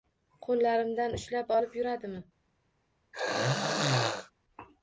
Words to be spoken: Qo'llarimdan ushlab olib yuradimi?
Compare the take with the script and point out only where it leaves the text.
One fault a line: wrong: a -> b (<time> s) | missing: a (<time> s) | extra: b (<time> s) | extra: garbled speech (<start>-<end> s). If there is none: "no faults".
no faults